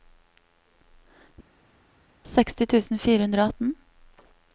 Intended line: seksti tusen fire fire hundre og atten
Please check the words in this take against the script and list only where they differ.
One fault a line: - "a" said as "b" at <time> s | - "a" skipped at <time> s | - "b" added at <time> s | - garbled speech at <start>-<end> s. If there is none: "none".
- "fire" skipped at 3.2 s